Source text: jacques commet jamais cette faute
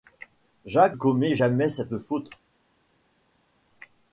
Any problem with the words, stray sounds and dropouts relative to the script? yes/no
no